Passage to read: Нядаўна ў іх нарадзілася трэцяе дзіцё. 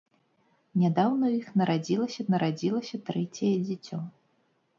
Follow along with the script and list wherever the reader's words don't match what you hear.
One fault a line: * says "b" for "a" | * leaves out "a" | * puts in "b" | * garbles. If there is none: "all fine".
* puts in "нарадзілася"